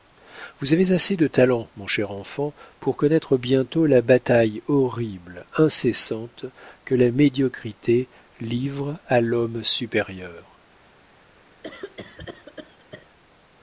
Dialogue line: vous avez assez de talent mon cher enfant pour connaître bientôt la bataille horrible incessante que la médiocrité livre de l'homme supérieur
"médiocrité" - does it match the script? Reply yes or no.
yes